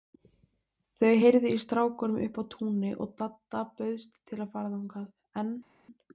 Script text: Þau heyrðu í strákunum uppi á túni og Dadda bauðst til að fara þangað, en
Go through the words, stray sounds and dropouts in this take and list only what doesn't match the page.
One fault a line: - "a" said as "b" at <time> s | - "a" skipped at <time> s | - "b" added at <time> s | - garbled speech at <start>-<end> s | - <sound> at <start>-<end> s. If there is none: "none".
none